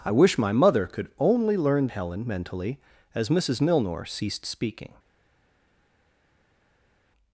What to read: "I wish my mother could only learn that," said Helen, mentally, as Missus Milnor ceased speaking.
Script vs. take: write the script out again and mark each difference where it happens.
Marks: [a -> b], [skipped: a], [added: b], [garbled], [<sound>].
"I wish my mother could only learn [skipped: that," said] Helen, mentally, as Missus Milnor ceased speaking.